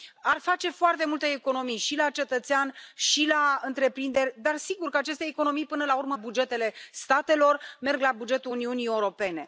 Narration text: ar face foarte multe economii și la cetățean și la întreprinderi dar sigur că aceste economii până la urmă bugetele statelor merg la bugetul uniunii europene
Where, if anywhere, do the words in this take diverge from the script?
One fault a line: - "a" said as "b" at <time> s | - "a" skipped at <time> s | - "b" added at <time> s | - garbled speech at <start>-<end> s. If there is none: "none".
none